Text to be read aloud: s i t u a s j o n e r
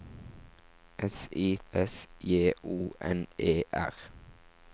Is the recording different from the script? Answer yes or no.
yes